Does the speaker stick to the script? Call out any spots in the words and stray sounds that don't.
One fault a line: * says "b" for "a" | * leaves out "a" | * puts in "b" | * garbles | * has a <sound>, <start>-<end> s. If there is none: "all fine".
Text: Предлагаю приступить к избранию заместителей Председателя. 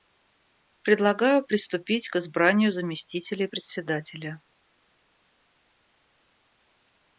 all fine